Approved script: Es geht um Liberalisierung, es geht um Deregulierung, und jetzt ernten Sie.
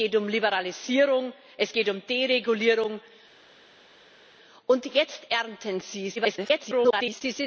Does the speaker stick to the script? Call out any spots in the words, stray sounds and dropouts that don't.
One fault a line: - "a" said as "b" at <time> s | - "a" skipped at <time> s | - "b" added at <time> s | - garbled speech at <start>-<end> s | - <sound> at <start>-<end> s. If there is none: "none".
- garbled speech at 6.2-7.2 s